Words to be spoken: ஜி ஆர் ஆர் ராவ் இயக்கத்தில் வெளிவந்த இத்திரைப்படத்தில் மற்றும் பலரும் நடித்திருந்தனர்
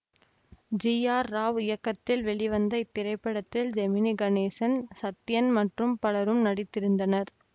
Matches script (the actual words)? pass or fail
fail